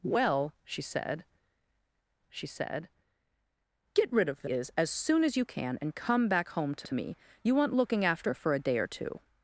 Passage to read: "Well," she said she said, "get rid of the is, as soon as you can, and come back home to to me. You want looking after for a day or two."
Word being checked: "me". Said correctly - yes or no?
yes